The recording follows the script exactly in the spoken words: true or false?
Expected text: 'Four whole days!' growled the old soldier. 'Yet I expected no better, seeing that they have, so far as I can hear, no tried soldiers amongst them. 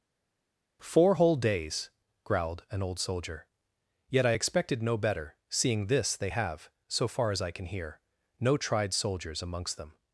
false